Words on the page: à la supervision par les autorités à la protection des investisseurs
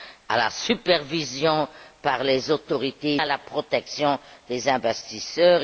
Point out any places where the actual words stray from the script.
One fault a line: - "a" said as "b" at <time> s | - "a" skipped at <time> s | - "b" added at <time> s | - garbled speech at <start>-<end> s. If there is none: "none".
none